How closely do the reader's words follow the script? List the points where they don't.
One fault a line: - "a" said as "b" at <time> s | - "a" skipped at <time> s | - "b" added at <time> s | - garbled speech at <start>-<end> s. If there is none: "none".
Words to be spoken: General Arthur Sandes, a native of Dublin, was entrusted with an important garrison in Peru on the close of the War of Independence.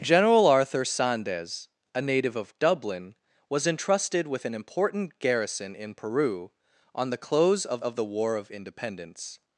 - "of" added at 7.8 s